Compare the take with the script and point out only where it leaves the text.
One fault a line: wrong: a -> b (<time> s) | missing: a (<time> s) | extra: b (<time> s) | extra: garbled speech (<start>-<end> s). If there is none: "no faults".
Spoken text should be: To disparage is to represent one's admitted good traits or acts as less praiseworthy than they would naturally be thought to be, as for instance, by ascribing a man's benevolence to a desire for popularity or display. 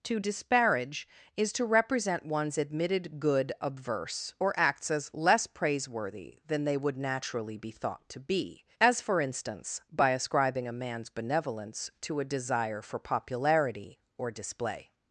wrong: traits -> obverse (3.6 s)